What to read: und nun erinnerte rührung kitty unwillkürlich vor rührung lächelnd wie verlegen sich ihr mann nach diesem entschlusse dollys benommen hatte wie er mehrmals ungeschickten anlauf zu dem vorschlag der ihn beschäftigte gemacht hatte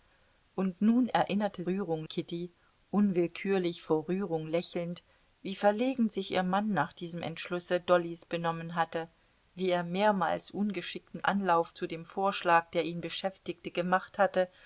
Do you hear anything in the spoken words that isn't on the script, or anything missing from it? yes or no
no